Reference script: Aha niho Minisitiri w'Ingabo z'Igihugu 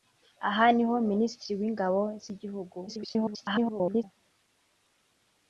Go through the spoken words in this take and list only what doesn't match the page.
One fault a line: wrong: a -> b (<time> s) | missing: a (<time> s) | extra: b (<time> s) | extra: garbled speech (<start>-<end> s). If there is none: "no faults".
extra: garbled speech (2.9-4.0 s)